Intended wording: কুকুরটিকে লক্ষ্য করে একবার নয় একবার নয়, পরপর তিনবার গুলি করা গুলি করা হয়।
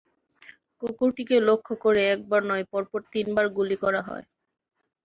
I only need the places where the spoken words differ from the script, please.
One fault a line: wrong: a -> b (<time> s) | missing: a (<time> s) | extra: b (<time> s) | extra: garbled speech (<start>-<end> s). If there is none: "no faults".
missing: একবার নয় (2.6 s)
missing: গুলি করা (4.0 s)